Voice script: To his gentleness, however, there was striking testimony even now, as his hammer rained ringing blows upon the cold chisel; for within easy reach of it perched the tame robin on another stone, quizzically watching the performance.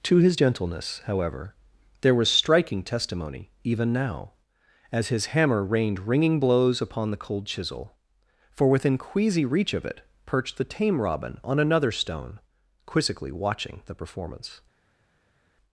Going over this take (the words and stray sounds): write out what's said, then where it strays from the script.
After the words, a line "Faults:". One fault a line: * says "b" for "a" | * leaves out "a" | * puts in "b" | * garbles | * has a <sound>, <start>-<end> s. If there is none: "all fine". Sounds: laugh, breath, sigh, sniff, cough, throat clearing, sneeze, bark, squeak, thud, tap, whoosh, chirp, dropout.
To his gentleness, however, there was striking testimony even now, as his hammer rained ringing blows upon the cold chisel; for within queasy reach of it perched the tame robin on another stone, quizzically watching the performance.
Faults:
* says "queasy" for "easy"